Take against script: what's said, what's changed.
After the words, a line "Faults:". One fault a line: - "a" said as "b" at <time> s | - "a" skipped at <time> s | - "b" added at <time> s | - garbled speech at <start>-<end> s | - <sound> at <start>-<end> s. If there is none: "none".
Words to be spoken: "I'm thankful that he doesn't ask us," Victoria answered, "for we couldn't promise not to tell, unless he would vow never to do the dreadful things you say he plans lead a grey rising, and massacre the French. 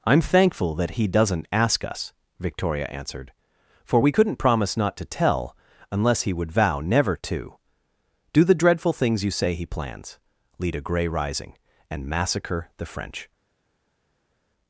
"I'm thankful that he doesn't ask us," Victoria answered, "for we couldn't promise not to tell, unless he would vow never to do the dreadful things you say he plans lead a grey rising, and massacre the French.
Faults:
none